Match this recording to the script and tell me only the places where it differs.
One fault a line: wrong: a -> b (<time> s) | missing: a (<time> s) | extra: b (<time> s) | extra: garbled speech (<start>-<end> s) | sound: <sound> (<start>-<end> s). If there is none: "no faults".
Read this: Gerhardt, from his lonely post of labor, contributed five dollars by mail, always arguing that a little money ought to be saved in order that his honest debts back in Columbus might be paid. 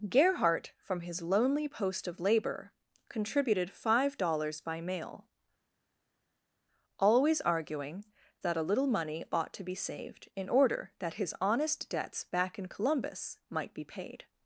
no faults